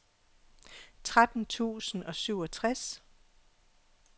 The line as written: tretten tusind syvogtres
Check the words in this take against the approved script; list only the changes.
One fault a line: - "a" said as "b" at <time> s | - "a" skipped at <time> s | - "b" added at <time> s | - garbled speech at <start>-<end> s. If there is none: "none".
- "og" added at 2.0 s